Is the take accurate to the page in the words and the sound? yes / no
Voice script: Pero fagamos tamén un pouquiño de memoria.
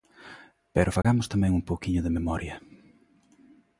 no